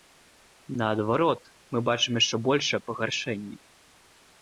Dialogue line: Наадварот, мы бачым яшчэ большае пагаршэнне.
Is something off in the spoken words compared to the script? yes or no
no